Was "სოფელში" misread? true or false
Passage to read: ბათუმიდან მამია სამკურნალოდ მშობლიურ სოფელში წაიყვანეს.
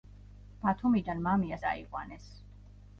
true